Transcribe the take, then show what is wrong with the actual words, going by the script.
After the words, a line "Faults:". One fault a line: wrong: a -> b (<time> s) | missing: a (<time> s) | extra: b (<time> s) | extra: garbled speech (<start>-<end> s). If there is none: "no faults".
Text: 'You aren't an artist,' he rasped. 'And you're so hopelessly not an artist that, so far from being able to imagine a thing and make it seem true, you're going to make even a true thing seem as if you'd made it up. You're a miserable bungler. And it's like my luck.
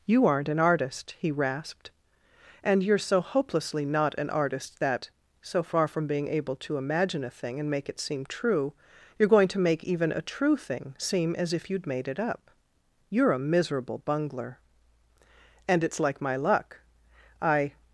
'You aren't an artist,' he rasped. 'And you're so hopelessly not an artist that, so far from being able to imagine a thing and make it seem true, you're going to make even a true thing seem as if you'd made it up. You're a miserable bungler. And it's like my luck. I
Faults:
extra: I (17.4 s)